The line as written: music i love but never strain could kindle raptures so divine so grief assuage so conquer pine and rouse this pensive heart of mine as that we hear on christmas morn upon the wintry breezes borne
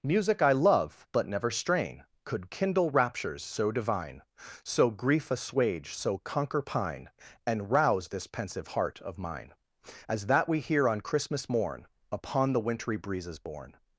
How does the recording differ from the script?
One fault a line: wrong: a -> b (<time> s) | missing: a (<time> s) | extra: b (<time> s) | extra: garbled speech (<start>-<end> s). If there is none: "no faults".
no faults